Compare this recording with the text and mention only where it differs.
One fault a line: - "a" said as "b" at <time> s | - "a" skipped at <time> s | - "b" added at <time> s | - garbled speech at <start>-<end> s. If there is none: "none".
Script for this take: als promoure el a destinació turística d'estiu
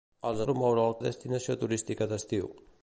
none